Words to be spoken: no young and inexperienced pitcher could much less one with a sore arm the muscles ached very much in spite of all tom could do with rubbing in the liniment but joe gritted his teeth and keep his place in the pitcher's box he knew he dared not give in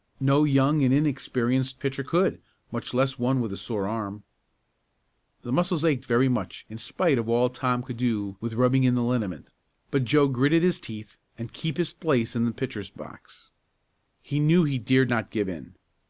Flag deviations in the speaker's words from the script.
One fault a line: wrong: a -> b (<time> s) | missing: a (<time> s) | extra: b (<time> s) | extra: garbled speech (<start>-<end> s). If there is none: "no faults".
no faults